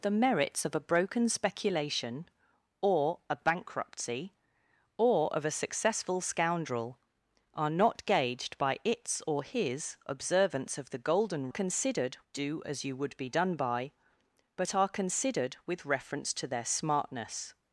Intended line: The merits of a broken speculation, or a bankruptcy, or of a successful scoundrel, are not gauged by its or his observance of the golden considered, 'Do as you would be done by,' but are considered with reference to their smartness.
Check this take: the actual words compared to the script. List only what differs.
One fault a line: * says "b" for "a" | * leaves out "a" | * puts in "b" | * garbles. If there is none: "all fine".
all fine